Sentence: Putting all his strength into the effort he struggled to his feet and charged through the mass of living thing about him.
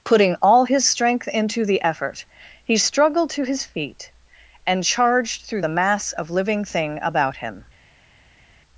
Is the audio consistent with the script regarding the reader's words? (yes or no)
yes